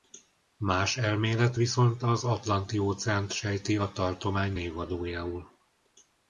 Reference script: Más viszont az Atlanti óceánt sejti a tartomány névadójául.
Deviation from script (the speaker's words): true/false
true